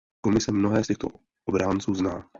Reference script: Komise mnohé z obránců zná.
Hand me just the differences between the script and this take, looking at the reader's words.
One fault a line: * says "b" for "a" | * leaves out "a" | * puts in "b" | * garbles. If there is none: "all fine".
* puts in "těchto"